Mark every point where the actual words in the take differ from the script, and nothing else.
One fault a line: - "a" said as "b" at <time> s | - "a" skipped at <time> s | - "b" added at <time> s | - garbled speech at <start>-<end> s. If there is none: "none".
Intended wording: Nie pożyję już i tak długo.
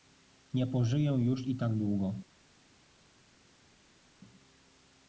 none